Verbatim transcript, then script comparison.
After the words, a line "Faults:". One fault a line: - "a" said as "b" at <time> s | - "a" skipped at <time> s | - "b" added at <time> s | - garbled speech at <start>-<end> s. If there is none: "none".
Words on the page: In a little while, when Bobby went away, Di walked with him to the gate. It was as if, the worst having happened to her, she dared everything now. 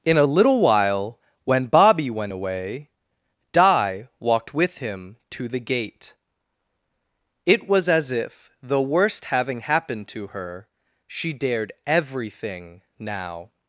In a little while, when Bobby went away, Di walked with him to the gate. It was as if, the worst having happened to her, she dared everything now.
Faults:
none